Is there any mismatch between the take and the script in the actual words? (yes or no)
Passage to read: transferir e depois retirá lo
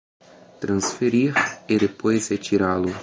no